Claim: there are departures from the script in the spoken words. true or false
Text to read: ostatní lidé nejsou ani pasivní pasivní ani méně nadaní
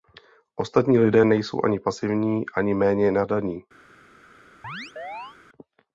true